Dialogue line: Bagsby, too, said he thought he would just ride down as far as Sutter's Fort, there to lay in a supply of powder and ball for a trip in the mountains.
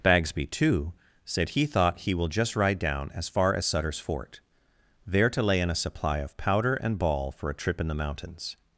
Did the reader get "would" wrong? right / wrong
wrong